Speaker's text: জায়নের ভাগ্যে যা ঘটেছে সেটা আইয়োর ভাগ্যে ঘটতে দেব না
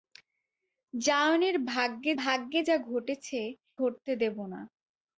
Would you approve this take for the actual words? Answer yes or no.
no